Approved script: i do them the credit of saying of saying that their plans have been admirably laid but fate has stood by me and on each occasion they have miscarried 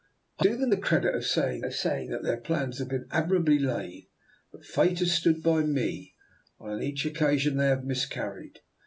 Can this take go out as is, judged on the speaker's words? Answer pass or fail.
pass